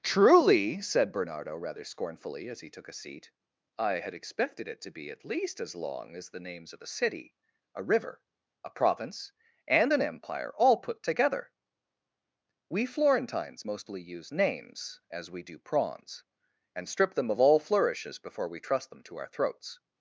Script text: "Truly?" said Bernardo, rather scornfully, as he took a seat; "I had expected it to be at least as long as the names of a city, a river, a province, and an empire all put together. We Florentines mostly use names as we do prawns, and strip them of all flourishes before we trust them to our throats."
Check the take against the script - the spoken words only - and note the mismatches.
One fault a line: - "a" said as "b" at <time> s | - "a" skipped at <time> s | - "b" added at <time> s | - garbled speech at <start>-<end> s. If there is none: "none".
none